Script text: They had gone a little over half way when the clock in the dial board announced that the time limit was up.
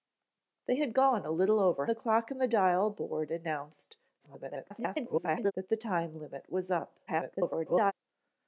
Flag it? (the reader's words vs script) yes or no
yes